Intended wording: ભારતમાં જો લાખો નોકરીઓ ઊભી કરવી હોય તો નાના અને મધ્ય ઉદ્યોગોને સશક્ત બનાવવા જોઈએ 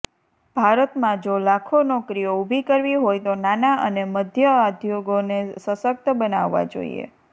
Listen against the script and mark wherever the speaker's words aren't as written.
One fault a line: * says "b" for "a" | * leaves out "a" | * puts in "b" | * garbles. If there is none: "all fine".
all fine